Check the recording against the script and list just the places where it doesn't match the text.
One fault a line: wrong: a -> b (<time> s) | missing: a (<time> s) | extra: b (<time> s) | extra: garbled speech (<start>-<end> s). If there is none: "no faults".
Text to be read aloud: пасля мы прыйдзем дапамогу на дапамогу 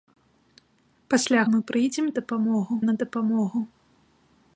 no faults